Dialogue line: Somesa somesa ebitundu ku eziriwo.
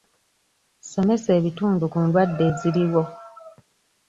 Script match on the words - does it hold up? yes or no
no